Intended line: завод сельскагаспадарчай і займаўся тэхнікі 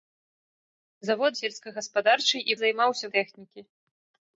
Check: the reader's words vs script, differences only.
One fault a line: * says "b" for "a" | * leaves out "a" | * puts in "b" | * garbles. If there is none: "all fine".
all fine